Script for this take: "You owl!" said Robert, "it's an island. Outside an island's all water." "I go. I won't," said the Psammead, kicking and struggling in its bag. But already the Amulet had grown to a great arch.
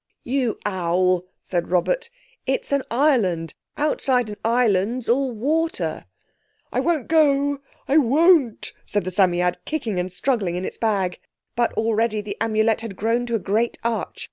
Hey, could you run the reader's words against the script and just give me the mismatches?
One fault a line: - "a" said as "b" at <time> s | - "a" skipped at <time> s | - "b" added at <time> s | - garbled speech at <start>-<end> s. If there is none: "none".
- "won't" added at 6.8 s